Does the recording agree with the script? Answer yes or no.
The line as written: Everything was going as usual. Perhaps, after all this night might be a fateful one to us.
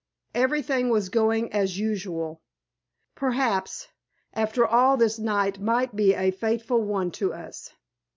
yes